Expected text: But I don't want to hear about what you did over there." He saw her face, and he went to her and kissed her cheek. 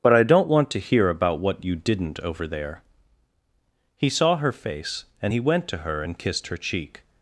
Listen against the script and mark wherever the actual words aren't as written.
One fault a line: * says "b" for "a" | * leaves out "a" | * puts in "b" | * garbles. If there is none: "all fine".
* says "didn't" for "did"